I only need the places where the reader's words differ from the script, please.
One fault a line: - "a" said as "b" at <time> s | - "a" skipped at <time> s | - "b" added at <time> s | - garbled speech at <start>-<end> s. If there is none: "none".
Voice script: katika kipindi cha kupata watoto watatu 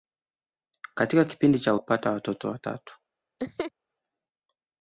none